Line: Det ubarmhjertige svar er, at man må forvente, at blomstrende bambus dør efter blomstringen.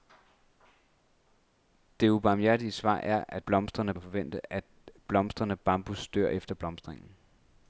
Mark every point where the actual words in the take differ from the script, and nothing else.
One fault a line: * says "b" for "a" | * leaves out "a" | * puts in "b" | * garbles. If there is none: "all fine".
* says "blomstrende" for "man"